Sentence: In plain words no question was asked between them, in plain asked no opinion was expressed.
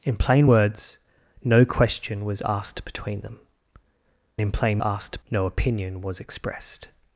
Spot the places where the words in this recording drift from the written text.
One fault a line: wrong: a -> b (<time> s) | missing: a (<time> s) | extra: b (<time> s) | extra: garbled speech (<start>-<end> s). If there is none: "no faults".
no faults